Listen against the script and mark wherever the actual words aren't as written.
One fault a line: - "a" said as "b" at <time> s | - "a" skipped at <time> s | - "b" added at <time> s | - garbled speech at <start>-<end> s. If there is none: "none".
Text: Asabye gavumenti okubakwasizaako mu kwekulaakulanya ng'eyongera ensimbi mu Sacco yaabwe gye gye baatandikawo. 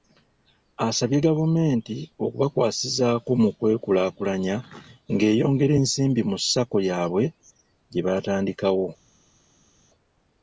- "gye" skipped at 8.0 s